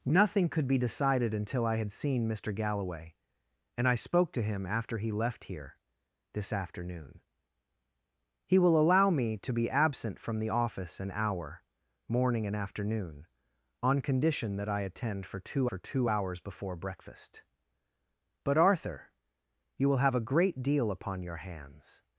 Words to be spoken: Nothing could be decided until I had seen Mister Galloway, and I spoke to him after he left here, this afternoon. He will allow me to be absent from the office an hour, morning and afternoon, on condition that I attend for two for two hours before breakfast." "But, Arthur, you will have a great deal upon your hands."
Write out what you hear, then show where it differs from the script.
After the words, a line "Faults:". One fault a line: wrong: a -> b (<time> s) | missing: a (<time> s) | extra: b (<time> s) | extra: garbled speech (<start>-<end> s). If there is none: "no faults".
Nothing could be decided until I had seen Mister Galloway, and I spoke to him after he left here, this afternoon. He will allow me to be absent from the office an hour, morning and afternoon, on condition that I attend for two for two hours before breakfast." "But, Arthur, you will have a great deal upon your hands."
Faults:
no faults